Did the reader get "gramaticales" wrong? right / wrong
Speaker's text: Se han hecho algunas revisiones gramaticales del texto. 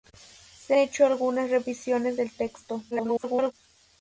wrong